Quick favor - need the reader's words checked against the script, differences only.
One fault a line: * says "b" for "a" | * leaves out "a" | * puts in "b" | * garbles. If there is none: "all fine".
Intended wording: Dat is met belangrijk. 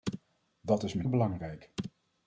all fine